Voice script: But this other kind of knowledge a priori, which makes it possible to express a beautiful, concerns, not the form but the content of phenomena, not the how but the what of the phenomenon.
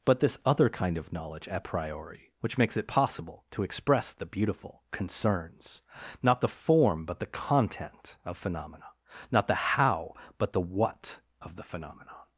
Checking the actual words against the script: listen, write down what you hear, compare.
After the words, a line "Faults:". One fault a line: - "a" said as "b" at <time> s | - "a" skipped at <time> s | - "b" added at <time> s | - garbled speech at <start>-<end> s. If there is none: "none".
But this other kind of knowledge a priori, which makes it possible to express the beautiful, concerns, not the form but the content of phenomena, not the how but the what of the phenomenon.
Faults:
- "a" said as "the" at 4.1 s